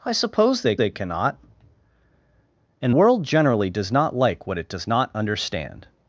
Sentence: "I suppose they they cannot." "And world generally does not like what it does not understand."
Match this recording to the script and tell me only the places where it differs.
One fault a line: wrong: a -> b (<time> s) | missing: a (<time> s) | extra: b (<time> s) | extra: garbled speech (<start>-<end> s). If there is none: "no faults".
no faults